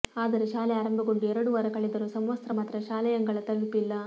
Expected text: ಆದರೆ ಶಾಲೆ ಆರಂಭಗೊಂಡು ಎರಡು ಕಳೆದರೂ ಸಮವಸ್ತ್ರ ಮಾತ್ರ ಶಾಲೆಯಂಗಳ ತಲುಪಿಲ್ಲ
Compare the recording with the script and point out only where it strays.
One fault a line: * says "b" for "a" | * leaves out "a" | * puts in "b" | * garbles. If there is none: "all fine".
* puts in "ವಾರ"